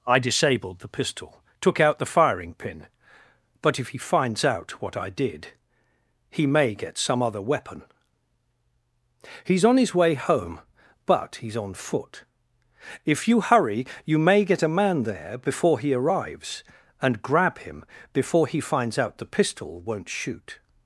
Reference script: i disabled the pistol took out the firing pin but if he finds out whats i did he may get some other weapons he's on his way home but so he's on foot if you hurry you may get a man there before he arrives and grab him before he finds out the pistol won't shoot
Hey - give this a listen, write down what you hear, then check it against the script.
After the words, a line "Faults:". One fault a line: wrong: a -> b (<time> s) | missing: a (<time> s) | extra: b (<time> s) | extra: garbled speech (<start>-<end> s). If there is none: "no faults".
i disabled the pistol took out the firing pin but if he finds out what i did he may get some other weapon he's on his way home but he's on foot if you hurry you may get a man there before he arrives and grab him before he finds out the pistol won't shoot
Faults:
wrong: whats -> what (4.8 s)
wrong: weapons -> weapon (7.4 s)
missing: so (11.3 s)